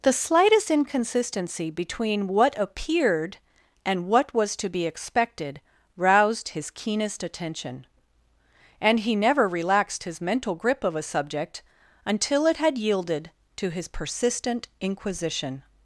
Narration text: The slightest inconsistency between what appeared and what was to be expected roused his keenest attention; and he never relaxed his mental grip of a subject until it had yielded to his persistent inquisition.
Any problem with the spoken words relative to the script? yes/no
no